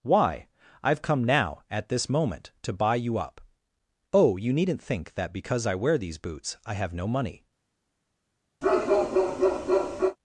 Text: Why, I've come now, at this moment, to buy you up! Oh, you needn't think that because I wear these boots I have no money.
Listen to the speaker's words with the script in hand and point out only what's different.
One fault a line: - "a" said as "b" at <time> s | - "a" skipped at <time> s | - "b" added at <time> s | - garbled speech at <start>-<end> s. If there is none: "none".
none